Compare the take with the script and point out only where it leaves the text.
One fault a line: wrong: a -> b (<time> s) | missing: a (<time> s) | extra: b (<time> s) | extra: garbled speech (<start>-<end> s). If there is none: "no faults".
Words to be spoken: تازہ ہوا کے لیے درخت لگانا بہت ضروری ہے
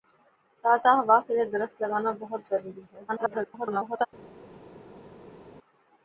extra: garbled speech (3.1-4.1 s)